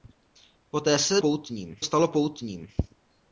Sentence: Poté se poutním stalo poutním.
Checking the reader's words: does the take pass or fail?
pass